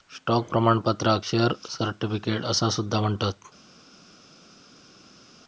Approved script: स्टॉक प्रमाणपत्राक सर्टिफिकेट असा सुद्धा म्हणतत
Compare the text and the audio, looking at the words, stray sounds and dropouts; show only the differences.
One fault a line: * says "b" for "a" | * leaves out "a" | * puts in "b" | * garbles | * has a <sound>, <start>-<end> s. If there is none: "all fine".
* puts in "शेअर"